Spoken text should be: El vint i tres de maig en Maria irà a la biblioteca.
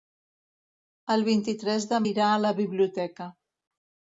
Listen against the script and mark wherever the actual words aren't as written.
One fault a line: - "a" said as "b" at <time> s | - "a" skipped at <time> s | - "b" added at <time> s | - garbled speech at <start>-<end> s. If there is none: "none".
- "maig en Maria" skipped at 2.0 s